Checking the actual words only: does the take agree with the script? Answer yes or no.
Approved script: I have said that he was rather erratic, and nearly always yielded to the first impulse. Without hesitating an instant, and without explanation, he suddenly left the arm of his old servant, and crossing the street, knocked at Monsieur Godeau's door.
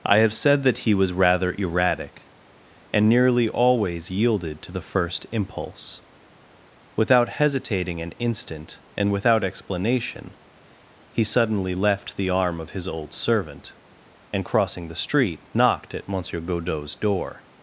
yes